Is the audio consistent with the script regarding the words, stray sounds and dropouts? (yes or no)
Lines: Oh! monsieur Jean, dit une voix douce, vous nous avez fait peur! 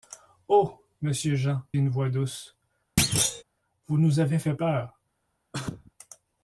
no